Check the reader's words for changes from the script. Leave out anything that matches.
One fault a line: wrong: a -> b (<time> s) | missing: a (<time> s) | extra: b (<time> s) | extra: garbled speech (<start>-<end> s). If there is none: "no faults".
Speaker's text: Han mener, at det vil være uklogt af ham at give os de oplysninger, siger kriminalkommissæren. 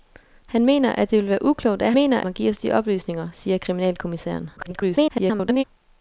wrong: ham -> mener (1.9 s)
extra: garbled speech (4.6-5.6 s)